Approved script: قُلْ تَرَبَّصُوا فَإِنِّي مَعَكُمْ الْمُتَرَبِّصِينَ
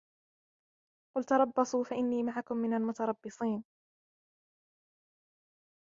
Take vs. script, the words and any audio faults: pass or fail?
fail